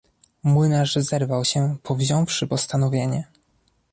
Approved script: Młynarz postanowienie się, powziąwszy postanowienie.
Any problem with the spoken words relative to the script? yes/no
yes